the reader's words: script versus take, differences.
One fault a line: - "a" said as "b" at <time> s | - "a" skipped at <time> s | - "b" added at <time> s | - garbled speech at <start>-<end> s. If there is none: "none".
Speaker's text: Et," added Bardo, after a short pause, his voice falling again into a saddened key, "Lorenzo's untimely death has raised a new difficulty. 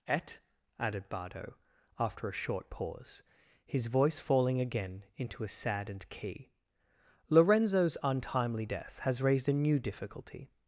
none